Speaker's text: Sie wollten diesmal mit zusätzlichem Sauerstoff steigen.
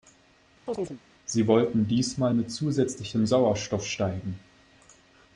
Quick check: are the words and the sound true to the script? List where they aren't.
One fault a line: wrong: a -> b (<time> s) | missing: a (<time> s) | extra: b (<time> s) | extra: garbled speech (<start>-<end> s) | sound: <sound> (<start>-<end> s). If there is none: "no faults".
sound: chirp (0.7-1.0 s)